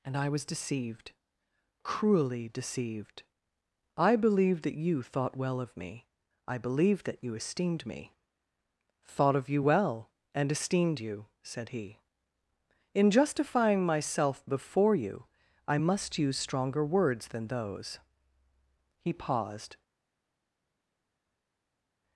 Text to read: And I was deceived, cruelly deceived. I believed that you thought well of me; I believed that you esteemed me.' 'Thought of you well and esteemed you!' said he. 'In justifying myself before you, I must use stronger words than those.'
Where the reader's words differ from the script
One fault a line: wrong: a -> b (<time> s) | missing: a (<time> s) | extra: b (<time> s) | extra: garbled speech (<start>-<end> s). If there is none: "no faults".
extra: He paused (19.0 s)